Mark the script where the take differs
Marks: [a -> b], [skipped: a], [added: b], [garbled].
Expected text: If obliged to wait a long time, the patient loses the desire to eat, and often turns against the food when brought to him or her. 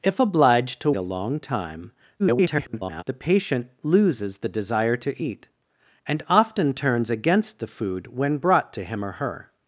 If obliged to [skipped: wait] a long time, [garbled] the patient loses the desire to eat, and often turns against the food when brought to him or her.